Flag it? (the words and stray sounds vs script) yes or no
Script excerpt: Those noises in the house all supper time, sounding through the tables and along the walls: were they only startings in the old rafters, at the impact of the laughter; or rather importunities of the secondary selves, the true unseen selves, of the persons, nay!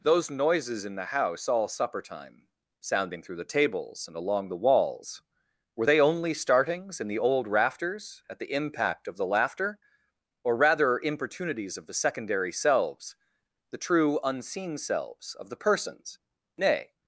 no